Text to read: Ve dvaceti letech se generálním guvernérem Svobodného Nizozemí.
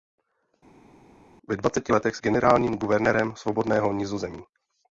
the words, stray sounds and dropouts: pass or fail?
pass